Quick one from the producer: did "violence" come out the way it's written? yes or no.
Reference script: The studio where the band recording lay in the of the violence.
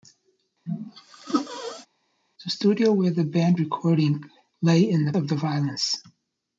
yes